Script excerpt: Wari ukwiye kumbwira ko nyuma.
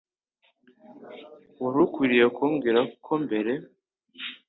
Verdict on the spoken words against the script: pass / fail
fail